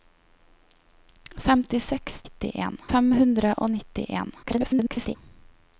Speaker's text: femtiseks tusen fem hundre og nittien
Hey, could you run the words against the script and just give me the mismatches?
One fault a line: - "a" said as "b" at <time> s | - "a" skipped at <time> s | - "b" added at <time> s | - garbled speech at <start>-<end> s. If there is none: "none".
- "tusen" said as "nittien" at 2.2 s
- garbled speech at 4.4-5.2 s